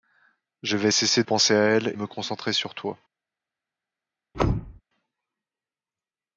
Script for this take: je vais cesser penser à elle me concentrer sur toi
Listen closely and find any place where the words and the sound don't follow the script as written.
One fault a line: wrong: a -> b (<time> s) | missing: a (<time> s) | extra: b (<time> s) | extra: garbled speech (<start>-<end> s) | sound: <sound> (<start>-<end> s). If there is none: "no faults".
sound: thud (4.3-4.8 s)